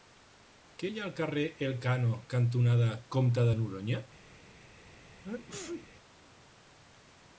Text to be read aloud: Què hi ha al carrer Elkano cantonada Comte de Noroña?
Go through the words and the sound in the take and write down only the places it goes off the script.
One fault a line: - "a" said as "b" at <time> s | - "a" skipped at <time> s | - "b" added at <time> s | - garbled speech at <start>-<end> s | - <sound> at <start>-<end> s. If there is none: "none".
- sneeze at 5.2-5.9 s